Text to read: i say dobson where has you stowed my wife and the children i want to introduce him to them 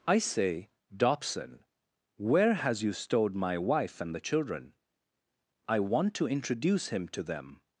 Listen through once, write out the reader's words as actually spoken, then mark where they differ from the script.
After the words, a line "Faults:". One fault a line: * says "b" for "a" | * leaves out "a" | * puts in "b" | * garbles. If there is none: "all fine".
i say dobson where has you stowed my wife and the children i want to introduce him to them
Faults:
all fine